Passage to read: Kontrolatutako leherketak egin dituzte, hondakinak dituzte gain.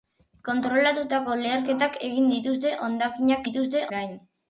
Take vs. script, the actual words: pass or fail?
pass